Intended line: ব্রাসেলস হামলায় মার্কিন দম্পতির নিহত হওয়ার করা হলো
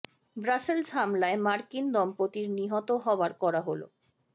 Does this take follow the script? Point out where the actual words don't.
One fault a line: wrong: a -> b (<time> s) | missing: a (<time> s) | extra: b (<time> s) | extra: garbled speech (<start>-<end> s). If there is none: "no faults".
no faults